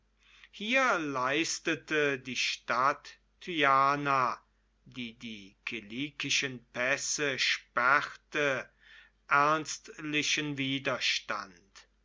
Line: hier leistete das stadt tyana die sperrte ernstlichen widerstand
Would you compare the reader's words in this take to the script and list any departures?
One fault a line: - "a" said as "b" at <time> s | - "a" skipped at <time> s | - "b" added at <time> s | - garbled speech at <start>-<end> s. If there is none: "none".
- "das" said as "die" at 2.2 s
- "die kilikischen pässe" added at 5.2 s